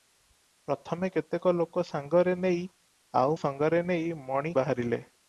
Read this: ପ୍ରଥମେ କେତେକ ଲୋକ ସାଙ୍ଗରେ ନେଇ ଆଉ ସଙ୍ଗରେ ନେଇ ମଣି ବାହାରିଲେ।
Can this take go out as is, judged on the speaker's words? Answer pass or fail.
pass